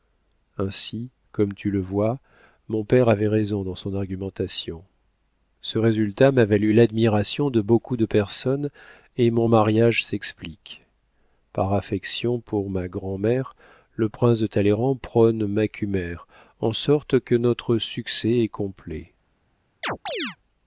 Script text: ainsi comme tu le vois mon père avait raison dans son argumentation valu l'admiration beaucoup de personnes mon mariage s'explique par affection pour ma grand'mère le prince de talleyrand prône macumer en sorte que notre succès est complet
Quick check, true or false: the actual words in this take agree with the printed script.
false